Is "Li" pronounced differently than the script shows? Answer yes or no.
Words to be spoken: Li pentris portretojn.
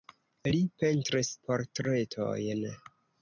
no